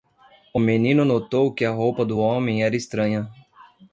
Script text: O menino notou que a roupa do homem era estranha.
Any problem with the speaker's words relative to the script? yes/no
no